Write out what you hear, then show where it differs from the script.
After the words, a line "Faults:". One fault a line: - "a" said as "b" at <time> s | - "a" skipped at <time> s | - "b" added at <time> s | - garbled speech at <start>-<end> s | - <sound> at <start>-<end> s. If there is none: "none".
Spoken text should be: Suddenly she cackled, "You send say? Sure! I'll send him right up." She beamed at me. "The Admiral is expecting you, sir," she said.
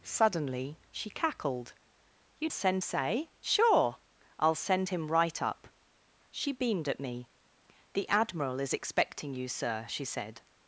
Suddenly she cackled, "You send say? Sure! I'll send him right up." She beamed at me. "The Admiral is expecting you, sir," she said.
Faults:
none